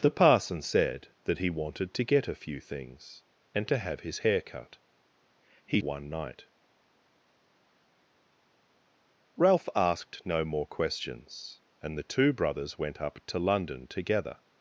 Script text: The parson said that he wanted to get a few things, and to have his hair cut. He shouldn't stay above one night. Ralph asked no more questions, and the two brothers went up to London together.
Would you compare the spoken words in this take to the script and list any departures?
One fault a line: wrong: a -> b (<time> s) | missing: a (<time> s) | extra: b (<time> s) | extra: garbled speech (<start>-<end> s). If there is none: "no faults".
missing: shouldn't stay above (5.8 s)